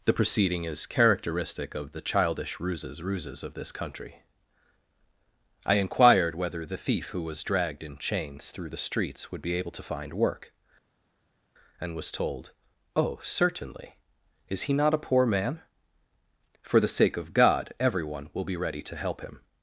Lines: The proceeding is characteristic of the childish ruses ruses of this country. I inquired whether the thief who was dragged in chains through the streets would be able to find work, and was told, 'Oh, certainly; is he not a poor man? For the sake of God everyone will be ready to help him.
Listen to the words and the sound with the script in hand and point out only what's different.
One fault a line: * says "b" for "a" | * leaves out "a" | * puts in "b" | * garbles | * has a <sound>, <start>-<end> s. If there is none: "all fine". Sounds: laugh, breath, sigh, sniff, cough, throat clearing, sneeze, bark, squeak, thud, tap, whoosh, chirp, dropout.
all fine